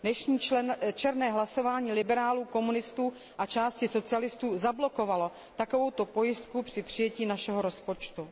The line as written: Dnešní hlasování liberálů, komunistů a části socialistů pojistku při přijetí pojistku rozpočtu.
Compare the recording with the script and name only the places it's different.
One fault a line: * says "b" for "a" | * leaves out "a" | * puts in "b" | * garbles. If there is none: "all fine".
* puts in "černé"
* puts in "zablokovalo takovouto"
* says "našeho" for "pojistku"